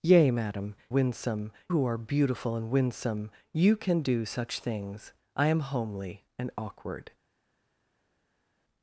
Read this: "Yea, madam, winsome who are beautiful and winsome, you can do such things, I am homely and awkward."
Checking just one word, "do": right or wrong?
right